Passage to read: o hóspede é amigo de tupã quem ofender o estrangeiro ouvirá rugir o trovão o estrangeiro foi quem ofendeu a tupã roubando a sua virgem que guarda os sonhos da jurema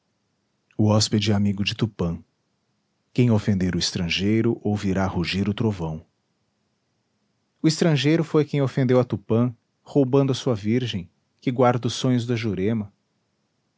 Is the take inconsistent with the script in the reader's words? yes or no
no